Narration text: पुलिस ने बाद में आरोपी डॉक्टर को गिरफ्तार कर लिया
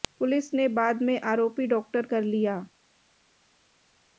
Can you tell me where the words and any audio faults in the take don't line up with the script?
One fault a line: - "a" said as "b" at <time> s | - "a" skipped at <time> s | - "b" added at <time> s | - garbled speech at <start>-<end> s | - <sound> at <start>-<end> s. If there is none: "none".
- "को गिरफ्तार" skipped at 2.0 s